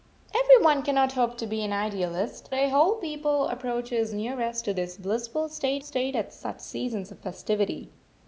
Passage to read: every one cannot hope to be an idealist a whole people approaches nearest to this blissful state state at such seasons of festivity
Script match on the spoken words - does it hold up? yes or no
yes